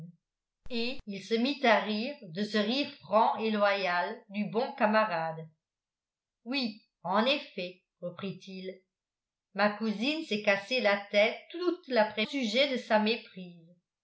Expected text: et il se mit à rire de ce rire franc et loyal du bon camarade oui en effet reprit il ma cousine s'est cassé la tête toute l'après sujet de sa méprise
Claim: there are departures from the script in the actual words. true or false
false